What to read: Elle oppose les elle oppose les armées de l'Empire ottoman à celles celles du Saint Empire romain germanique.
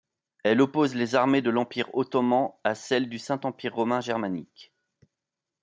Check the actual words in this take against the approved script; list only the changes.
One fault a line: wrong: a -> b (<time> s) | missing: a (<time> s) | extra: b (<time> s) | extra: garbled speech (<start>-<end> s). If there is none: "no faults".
missing: elle oppose les (1.1 s)
missing: celles (3.1 s)